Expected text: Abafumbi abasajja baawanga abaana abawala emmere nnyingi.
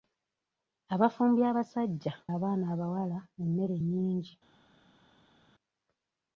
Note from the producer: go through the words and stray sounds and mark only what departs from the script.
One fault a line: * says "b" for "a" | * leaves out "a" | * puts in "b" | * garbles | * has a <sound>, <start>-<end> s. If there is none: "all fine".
* leaves out "baawanga"